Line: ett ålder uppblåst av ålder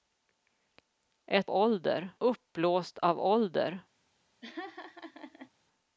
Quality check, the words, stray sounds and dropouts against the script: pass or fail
fail